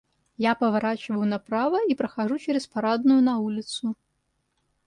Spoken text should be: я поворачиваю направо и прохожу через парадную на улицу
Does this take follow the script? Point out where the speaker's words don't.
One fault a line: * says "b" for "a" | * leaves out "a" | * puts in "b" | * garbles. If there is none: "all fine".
all fine